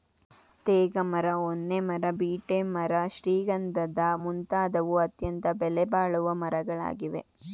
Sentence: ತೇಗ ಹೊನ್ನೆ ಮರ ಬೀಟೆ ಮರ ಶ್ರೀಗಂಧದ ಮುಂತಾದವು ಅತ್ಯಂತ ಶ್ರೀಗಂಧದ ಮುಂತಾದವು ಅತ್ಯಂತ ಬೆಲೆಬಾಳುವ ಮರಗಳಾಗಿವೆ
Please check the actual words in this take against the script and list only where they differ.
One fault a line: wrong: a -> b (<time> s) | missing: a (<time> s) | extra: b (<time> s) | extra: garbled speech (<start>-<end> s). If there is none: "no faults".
extra: ಮರ (1.1 s)
missing: ಶ್ರೀಗಂಧದ ಮುಂತಾದವು ಅತ್ಯಂತ (5.5 s)